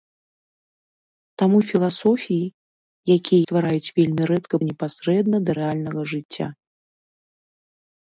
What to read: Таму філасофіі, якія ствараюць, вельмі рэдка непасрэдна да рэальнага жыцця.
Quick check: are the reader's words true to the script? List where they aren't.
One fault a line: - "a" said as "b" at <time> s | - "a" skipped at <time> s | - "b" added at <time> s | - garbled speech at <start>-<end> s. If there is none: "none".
none